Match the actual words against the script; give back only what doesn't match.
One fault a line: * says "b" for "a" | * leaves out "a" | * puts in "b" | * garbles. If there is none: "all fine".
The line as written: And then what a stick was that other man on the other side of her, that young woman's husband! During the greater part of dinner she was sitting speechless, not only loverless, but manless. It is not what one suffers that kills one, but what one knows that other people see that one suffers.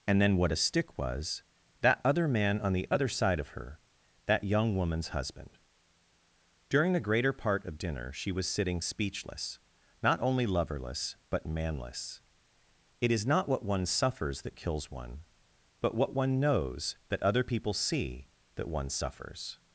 all fine